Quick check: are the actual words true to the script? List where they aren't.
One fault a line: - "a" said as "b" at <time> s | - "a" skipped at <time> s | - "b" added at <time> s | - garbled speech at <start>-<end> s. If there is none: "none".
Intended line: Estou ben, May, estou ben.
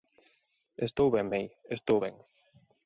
none